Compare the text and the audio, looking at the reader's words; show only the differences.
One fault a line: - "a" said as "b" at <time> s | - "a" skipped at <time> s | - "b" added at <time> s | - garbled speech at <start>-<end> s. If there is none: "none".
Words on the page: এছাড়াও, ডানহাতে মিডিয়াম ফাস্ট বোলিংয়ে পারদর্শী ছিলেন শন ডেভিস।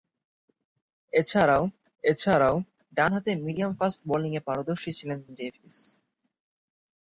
- "এছাড়াও" added at 2.0 s
- "শন" skipped at 5.2 s